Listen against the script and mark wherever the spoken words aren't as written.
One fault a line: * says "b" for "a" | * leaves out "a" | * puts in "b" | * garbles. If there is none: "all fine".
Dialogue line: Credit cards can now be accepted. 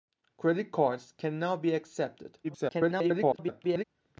* garbles